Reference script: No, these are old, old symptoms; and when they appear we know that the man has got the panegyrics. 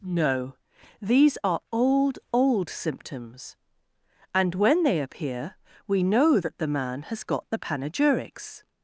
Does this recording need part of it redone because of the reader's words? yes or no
no